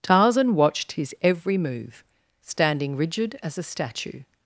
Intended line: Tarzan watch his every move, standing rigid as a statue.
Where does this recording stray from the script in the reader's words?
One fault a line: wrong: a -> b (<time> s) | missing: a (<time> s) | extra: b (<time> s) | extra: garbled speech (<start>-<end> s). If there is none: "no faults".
wrong: watch -> watched (0.6 s)